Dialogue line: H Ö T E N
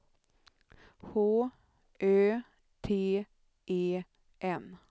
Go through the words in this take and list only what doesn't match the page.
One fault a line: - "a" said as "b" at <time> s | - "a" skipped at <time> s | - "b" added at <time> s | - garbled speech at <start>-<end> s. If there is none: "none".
none